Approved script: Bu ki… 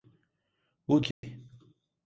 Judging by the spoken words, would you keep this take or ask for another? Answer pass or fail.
pass